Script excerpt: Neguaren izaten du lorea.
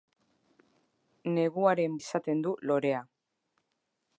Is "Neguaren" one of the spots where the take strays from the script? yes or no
no